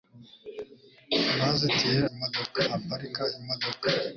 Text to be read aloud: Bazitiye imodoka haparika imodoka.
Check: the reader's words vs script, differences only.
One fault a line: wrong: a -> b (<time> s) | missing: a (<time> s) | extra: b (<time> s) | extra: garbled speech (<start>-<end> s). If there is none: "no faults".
no faults